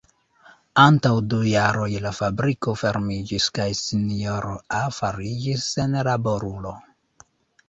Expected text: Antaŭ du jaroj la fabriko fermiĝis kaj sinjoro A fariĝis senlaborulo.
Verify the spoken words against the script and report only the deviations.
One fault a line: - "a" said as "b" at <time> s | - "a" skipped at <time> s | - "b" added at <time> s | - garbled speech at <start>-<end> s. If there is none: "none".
none